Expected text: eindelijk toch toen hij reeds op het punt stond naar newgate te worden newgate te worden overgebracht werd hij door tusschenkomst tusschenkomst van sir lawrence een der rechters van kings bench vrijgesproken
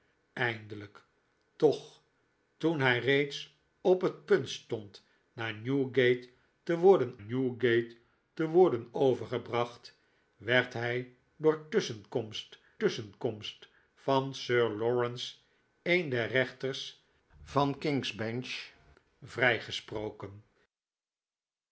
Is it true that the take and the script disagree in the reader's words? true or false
false